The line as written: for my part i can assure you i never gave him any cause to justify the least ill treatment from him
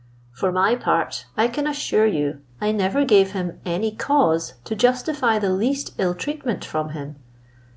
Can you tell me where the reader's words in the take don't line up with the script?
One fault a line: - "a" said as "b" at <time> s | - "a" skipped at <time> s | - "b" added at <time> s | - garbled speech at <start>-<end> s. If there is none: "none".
none